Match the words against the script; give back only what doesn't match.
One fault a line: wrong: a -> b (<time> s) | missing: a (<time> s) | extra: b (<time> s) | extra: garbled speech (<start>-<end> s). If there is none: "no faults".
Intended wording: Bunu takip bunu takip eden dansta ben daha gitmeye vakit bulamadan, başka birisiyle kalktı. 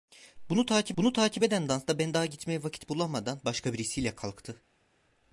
no faults